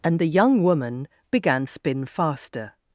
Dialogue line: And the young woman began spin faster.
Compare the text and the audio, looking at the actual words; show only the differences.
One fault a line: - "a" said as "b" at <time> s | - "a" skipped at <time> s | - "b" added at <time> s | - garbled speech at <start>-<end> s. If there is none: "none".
none